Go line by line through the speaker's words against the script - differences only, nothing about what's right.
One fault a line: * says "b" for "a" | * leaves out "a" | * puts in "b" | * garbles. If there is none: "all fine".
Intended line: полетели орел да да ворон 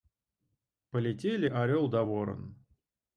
* leaves out "да"